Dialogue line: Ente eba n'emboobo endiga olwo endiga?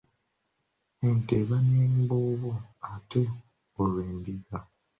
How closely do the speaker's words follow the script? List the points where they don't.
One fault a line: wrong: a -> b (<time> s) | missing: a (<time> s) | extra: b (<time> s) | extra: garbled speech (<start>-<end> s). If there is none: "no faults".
wrong: endiga -> ate (2.9 s)